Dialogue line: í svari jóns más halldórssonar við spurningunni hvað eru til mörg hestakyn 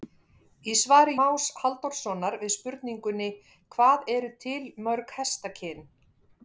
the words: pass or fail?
fail